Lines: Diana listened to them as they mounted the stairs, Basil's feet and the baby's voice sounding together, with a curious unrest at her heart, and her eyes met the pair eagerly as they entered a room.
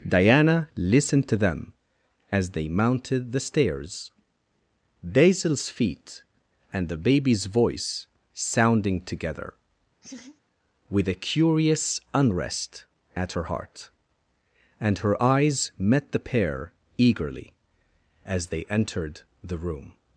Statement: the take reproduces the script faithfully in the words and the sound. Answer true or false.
false